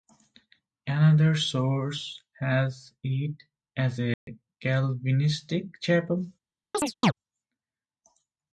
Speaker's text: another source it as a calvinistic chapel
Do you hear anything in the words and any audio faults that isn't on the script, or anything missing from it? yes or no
yes